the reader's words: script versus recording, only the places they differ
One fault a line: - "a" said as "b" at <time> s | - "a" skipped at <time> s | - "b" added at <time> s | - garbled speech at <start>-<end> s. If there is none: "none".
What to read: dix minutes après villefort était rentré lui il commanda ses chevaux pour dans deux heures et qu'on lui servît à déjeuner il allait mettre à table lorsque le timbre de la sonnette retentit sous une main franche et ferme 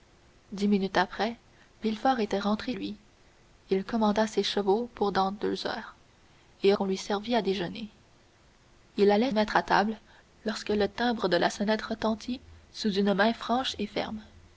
none